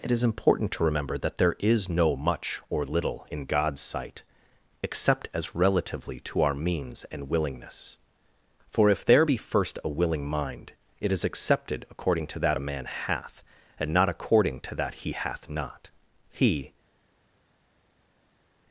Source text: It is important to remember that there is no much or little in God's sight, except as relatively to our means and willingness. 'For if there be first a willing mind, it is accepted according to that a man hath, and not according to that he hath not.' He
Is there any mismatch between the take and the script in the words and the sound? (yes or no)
no